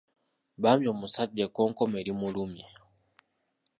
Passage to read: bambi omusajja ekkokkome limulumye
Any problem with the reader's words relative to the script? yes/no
no